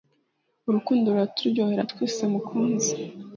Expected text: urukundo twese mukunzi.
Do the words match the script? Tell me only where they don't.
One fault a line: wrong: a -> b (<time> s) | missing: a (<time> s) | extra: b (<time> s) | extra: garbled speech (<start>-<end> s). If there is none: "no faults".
extra: ruraturyohera (1.1 s)